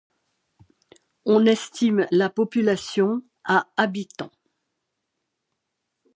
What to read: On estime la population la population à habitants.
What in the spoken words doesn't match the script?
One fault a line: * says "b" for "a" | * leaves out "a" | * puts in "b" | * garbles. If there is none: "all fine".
* leaves out "la population"